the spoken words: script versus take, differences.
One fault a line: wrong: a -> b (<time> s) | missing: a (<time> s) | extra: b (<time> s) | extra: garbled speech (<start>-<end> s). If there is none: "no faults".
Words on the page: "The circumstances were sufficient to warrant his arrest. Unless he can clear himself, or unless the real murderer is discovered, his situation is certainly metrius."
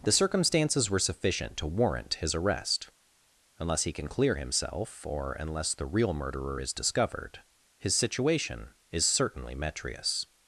no faults